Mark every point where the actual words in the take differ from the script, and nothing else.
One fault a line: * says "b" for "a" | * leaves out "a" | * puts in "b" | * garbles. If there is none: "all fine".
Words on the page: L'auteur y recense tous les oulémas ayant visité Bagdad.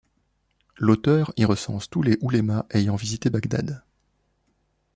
all fine